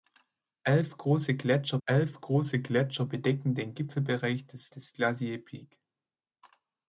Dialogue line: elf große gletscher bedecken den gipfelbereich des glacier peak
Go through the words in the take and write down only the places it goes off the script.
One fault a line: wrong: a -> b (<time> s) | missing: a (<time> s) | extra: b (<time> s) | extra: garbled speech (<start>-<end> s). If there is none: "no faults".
extra: elf große gletscher (1.8 s)
extra: des (4.7 s)